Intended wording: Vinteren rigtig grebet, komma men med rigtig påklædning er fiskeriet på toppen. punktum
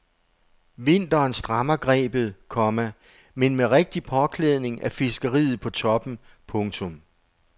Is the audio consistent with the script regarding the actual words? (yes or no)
no